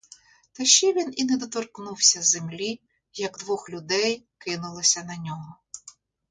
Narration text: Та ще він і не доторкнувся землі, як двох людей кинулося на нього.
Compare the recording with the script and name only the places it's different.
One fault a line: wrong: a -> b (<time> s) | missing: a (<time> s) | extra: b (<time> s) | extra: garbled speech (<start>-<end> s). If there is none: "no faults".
no faults